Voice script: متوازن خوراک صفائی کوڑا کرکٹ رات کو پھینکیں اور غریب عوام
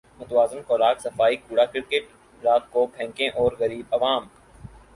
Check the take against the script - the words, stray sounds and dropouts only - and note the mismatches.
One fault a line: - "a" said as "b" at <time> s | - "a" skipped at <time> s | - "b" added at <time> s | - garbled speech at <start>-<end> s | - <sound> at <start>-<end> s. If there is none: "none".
none